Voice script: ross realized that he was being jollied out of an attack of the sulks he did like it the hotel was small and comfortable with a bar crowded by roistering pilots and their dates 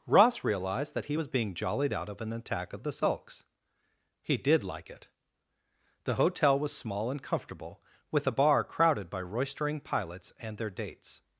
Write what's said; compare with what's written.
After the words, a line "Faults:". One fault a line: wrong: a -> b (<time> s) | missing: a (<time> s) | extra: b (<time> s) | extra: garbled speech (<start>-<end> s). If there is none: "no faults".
ross realized that he was being jollied out of an attack of the sulks he did like it the hotel was small and comfortable with a bar crowded by roistering pilots and their dates
Faults:
no faults